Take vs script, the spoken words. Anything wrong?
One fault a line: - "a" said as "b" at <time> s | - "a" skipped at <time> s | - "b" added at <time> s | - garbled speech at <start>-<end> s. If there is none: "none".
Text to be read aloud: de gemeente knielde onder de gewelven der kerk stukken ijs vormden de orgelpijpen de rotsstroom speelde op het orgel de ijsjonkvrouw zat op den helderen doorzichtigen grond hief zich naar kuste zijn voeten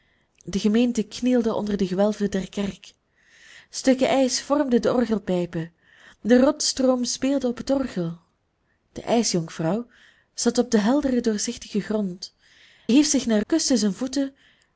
none